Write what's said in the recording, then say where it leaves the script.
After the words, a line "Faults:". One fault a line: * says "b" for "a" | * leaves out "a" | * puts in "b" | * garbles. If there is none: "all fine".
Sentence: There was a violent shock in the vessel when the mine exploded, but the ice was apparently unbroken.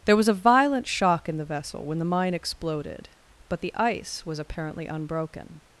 There was a violent shock in the vessel when the mine exploded, but the ice was apparently unbroken.
Faults:
all fine